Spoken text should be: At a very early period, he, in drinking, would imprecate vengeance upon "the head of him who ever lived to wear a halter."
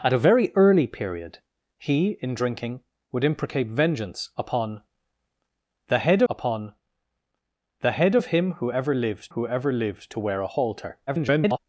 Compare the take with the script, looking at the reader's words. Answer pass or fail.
fail